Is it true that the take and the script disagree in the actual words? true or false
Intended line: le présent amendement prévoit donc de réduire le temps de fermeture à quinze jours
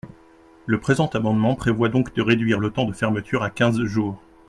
false